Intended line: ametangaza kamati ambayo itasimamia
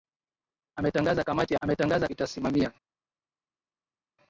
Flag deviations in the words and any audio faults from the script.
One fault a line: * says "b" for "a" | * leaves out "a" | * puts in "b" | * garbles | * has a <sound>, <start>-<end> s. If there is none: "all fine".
* says "ametangaza" for "ambayo"